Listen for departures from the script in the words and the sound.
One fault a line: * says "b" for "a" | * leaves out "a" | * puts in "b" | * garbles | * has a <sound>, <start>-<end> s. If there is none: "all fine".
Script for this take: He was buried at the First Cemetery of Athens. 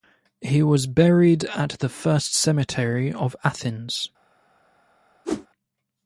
* has a whoosh, 5.2-5.5 s